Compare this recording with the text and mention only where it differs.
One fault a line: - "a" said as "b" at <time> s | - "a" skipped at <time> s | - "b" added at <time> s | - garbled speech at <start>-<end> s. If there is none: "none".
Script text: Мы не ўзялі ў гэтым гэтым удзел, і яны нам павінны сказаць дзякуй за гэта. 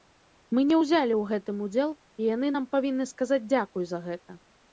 - "гэтым" skipped at 1.6 s